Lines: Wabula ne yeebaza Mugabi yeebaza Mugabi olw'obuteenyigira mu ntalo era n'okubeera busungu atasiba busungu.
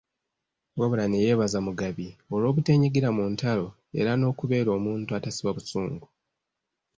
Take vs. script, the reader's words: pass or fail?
fail